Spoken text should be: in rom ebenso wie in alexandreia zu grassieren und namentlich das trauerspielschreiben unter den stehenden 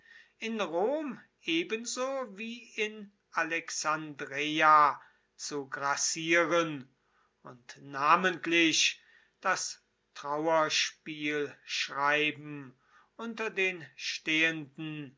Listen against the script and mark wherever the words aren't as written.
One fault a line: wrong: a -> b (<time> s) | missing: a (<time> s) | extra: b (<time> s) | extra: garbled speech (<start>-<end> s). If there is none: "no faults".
no faults